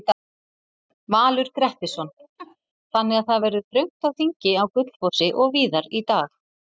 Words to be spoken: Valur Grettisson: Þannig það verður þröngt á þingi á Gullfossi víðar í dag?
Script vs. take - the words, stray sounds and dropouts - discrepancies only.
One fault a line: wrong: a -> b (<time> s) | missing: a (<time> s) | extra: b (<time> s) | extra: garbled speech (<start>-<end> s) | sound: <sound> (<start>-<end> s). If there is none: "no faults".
sound: laugh (2.4-2.6 s)
extra: að (3.2 s)
extra: og (5.4 s)